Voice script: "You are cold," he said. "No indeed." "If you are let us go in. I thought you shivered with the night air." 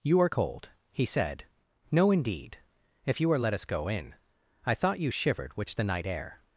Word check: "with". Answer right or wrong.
wrong